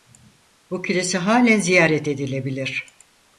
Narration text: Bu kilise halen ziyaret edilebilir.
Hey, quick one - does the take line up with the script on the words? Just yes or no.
yes